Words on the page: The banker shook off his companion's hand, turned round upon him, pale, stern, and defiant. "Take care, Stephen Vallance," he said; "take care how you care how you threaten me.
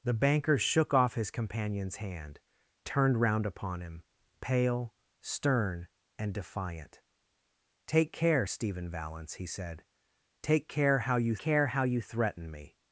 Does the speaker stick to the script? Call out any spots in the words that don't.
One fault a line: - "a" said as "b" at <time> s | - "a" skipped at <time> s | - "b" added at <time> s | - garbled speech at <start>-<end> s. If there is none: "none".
none